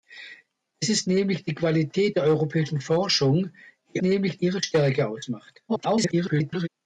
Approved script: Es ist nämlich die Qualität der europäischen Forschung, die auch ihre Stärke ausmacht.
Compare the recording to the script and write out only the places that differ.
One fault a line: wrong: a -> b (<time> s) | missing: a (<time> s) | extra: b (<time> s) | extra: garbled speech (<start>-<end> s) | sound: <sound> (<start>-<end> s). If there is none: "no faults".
wrong: auch -> nämlich (4.0 s)
extra: garbled speech (5.7-6.7 s)